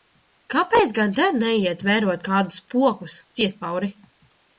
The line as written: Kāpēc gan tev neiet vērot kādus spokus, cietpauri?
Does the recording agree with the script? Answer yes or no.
yes